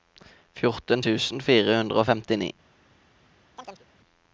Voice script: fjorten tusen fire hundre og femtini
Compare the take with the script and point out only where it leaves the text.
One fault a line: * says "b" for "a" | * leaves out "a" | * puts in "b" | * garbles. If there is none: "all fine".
all fine